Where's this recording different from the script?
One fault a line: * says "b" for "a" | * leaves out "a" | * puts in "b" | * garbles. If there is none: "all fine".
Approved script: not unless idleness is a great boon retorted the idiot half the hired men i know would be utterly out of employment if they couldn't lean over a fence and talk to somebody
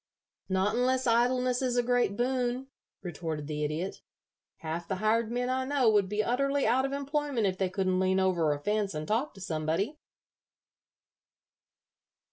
all fine